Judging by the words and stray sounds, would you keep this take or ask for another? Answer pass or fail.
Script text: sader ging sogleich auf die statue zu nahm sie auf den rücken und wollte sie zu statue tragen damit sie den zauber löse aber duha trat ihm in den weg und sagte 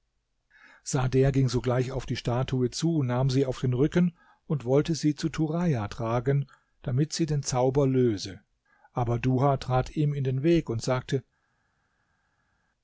fail